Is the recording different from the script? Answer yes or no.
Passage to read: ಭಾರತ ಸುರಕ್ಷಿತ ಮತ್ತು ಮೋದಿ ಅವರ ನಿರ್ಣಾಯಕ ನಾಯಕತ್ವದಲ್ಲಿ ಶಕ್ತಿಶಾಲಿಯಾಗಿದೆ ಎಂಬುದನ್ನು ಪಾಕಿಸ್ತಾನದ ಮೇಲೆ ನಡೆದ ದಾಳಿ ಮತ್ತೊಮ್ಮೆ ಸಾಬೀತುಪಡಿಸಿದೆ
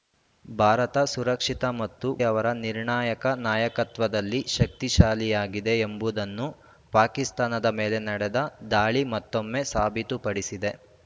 yes